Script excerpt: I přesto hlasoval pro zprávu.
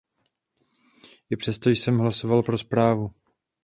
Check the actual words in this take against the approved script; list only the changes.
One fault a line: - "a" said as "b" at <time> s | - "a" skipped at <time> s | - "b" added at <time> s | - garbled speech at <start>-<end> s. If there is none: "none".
- "jsem" added at 1.7 s